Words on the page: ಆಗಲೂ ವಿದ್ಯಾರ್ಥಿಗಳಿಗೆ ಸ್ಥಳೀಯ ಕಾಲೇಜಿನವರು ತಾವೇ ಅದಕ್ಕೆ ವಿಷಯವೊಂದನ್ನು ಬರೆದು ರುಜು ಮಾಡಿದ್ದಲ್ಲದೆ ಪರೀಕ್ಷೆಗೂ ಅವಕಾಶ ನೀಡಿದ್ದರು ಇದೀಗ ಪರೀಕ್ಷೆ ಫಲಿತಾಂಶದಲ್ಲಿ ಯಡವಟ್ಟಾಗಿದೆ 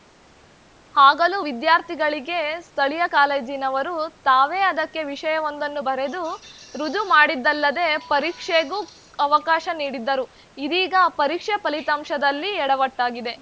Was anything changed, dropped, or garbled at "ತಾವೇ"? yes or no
no